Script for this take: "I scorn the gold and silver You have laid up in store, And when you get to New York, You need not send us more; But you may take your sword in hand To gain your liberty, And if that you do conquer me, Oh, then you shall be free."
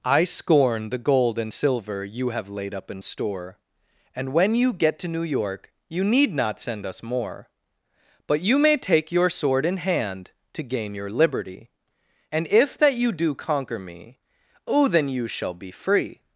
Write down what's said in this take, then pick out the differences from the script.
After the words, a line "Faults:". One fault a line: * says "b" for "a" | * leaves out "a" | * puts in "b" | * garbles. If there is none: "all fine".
"I scorn the gold and silver You have laid up in store, And when you get to New York, You need not send us more; But you may take your sword in hand To gain your liberty, And if that you do conquer me, Oh, then you shall be free."
Faults:
all fine